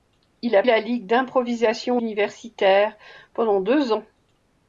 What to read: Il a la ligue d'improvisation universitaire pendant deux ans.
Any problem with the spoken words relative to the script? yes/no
no